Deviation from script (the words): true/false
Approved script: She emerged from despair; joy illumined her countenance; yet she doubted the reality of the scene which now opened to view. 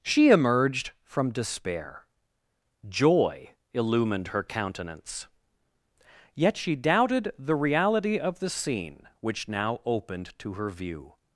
true